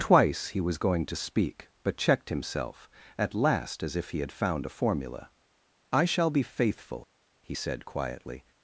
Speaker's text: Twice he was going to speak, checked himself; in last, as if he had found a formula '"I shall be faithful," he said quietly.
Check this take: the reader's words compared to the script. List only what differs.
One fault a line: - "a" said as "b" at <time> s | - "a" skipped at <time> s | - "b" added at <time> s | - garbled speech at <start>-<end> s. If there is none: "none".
- "but" added at 1.8 s
- "in" said as "at" at 3.2 s